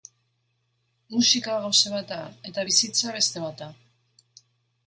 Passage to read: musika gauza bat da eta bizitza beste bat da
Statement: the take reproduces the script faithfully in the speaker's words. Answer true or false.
true